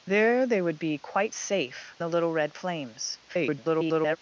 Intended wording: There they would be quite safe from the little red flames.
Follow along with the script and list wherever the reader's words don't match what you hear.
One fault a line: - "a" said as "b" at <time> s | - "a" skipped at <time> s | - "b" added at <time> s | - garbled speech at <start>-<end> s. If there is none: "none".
- "from" skipped at 1.9 s
- garbled speech at 3.3-4.2 s